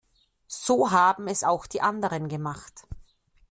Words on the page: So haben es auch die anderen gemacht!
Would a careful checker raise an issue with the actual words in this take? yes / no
no